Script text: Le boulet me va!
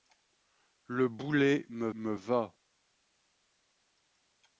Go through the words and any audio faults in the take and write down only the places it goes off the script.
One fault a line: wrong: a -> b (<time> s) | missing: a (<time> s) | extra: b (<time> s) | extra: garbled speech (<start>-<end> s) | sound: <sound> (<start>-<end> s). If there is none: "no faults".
extra: me (1.9 s)